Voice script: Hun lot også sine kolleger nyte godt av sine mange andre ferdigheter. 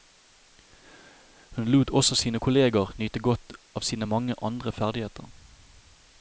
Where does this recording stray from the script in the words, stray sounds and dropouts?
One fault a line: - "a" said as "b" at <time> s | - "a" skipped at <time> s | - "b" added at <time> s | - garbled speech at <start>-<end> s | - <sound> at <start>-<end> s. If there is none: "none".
none